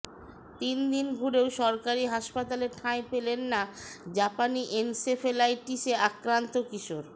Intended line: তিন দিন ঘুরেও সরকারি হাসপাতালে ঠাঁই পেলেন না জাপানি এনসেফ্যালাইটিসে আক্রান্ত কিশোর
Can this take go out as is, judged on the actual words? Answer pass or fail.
pass